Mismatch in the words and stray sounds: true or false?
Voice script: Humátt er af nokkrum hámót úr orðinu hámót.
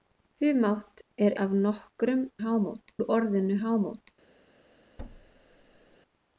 true